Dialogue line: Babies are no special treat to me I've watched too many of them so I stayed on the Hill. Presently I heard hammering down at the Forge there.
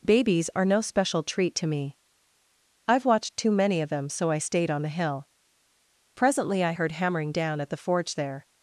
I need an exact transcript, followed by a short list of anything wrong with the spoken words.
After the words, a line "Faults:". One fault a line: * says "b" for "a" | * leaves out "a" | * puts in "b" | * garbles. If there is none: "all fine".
Babies are no special treat to me I've watched too many of them so I stayed on the Hill. Presently I heard hammering down at the Forge there.
Faults:
all fine